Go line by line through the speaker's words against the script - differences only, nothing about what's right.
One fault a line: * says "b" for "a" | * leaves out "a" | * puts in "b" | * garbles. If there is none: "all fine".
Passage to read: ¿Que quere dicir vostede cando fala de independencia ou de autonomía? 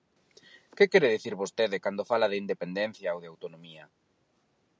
all fine